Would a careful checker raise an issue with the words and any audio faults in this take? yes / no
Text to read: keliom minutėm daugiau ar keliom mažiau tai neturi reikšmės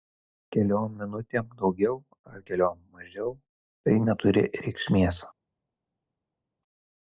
no